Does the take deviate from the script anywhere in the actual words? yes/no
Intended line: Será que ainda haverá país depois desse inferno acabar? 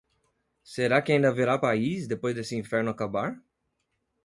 no